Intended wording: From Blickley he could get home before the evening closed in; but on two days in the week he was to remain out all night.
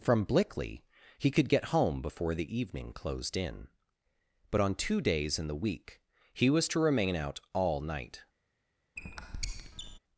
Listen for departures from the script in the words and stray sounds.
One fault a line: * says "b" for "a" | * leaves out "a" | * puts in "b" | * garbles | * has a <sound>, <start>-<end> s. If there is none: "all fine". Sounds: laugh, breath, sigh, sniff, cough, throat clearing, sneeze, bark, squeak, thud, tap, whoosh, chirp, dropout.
* has a squeak, 9.0-10.0 s